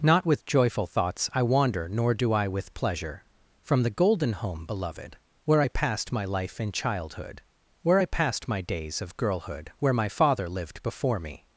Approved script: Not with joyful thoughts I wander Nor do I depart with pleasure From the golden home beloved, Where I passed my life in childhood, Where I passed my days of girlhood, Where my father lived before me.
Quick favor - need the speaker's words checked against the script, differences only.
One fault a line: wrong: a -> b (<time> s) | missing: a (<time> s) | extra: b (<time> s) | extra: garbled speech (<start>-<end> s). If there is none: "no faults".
missing: depart (2.5 s)